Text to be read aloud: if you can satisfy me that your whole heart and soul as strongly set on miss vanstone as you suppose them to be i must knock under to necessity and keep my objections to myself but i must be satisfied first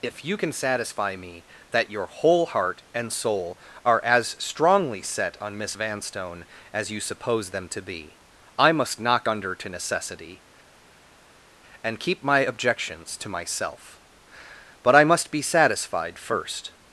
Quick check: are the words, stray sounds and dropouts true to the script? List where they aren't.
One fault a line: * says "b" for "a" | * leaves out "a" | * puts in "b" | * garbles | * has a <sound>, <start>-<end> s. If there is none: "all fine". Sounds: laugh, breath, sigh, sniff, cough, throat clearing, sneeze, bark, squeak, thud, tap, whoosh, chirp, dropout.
* puts in "are"